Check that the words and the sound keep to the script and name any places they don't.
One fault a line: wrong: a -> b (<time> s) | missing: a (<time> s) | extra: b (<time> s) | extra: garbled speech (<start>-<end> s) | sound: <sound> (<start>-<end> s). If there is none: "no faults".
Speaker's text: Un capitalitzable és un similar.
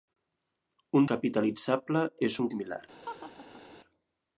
sound: laugh (3.0-3.6 s)